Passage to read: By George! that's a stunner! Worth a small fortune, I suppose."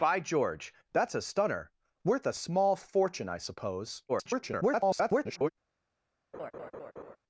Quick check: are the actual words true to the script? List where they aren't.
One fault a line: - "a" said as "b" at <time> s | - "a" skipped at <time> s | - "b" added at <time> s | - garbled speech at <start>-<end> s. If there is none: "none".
- garbled speech at 4.1-5.5 s